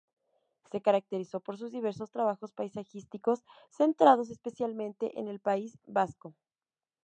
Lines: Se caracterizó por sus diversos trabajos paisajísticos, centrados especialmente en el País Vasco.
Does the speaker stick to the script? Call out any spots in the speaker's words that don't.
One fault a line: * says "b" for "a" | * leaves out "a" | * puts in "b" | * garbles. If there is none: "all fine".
all fine